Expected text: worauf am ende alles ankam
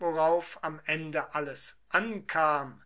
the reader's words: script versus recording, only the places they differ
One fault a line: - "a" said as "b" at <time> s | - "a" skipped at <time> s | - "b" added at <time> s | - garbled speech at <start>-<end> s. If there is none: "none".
none